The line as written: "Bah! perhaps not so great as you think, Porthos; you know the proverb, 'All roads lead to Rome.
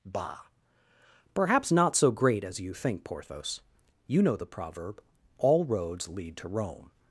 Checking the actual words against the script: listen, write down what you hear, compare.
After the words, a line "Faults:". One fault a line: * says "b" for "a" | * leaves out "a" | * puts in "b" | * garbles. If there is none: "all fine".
"Bah! perhaps not so great as you think, Porthos; you know the proverb, 'All roads lead to Rome.
Faults:
all fine